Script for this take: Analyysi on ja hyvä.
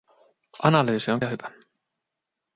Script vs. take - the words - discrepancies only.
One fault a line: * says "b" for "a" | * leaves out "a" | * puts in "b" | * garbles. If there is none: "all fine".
all fine